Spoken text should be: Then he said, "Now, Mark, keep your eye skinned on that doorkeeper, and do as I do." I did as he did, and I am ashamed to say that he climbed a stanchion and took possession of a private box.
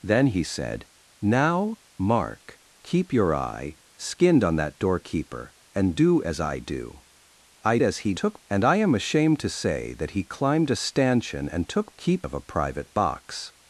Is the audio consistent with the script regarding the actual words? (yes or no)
no